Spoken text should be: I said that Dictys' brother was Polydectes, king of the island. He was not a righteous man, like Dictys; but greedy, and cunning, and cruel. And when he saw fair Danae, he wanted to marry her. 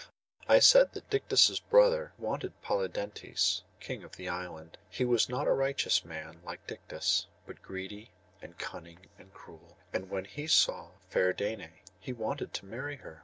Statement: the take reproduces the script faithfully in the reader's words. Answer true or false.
false